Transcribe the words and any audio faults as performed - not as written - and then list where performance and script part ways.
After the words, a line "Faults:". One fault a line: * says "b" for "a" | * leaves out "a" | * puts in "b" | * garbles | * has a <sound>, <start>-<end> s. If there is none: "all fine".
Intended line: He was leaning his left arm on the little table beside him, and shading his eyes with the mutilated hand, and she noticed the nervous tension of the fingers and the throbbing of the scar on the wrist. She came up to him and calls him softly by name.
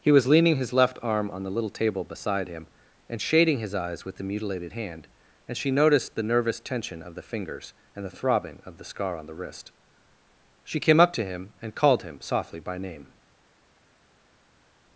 He was leaning his left arm on the little table beside him, and shading his eyes with the mutilated hand, and she noticed the nervous tension of the fingers and the throbbing of the scar on the wrist. She came up to him and called him softly by name.
Faults:
* says "called" for "calls"